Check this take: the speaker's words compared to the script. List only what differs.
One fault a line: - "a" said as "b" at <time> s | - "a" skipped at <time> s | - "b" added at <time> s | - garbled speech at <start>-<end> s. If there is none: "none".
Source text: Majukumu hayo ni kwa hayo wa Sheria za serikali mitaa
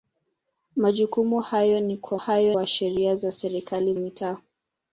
none